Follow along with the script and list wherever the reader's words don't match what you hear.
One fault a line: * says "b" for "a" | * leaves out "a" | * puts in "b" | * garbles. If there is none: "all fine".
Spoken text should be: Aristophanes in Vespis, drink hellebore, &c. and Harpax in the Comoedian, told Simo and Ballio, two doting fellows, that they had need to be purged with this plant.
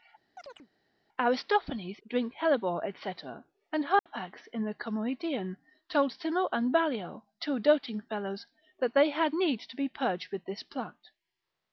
* leaves out "in Vespis"